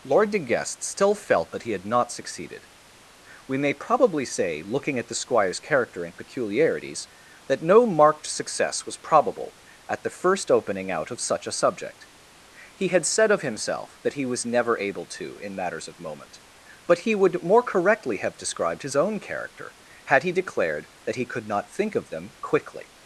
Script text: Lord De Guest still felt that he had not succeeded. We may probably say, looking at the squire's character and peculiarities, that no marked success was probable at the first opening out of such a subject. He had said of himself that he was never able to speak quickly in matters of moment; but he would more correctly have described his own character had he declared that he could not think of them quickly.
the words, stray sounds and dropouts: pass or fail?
fail